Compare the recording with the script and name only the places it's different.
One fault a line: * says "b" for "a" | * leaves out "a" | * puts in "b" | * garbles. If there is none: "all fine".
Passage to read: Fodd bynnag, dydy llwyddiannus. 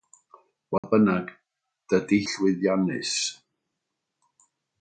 all fine